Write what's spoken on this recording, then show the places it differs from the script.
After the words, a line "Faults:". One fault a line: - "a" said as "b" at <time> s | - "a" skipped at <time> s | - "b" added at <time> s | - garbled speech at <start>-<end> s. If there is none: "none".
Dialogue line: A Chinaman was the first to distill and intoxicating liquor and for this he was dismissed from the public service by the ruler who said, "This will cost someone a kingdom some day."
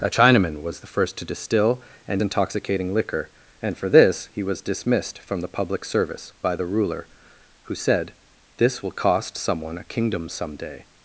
A Chinaman was the first to distill and intoxicating liquor and for this he was dismissed from the public service by the ruler who said, "This will cost someone a kingdom some day."
Faults:
none